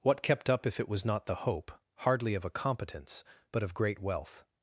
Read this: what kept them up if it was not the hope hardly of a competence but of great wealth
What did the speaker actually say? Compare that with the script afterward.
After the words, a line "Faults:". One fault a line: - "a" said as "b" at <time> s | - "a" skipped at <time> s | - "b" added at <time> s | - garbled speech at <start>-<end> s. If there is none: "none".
what kept up if it was not the hope hardly of a competence but of great wealth
Faults:
- "them" skipped at 0.5 s